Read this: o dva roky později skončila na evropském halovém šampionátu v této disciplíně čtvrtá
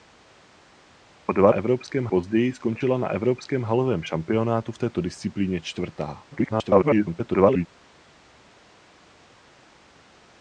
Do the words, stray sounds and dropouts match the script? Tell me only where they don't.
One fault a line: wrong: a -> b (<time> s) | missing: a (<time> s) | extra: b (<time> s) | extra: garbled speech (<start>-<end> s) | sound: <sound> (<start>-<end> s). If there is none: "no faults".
wrong: roky -> evropském (1.5 s)
extra: garbled speech (6.3-7.7 s)